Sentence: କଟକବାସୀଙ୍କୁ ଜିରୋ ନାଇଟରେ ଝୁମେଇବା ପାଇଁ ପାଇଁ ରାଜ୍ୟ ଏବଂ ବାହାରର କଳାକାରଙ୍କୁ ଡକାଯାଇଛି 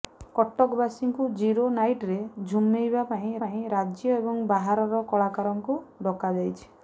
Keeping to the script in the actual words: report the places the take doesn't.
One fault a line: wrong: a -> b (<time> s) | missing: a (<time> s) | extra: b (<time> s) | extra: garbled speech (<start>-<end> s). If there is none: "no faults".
no faults